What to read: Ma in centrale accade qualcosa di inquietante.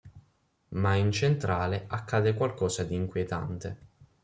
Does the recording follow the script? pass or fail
pass